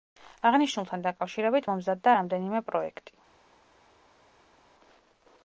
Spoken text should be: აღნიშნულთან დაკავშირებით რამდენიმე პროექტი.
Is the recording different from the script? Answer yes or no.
yes